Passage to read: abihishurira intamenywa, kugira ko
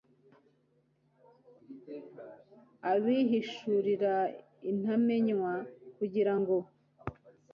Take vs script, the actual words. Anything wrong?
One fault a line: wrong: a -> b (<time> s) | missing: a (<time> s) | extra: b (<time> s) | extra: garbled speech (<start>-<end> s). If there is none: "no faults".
wrong: ko -> ngo (6.4 s)